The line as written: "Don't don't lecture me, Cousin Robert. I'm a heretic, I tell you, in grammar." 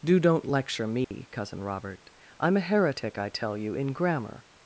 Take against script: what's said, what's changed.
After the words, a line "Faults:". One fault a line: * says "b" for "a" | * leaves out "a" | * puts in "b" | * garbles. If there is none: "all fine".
"Do don't lecture me, Cousin Robert. I'm a heretic, I tell you, in grammar."
Faults:
* says "Do" for "Don't"